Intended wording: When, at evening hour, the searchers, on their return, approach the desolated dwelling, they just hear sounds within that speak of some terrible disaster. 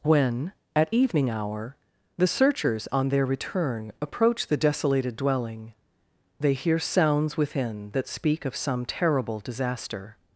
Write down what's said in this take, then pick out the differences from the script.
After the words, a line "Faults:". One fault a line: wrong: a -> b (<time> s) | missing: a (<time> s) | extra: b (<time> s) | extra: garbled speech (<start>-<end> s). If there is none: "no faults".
When, at evening hour, the searchers, on their return, approach the desolated dwelling, they hear sounds within that speak of some terrible disaster.
Faults:
missing: just (6.5 s)